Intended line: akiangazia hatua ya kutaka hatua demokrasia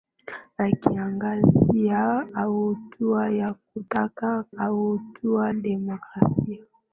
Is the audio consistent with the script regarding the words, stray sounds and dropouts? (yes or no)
yes